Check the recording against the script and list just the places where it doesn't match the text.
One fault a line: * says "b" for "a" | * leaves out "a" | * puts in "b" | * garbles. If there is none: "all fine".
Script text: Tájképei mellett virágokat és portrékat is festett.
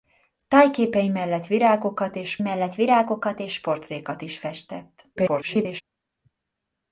* puts in "mellett virágokat és"
* garbles